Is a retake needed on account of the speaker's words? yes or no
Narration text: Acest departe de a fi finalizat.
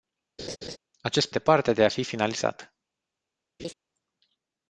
no